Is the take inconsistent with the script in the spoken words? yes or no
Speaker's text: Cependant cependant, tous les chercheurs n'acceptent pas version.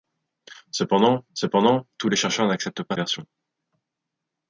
no